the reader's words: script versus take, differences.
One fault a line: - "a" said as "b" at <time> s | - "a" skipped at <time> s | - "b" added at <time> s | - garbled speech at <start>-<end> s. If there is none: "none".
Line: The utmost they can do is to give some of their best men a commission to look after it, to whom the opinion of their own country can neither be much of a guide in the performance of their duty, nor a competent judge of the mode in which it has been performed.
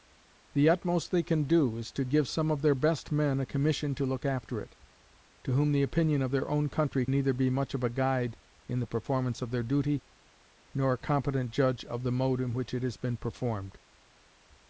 - "can" skipped at 7.0 s